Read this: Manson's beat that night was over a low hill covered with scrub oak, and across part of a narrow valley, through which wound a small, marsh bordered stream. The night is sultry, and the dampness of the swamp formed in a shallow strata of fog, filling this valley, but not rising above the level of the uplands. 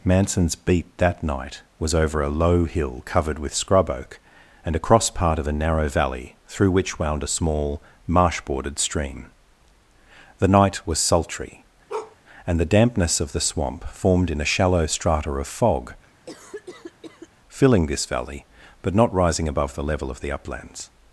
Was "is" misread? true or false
true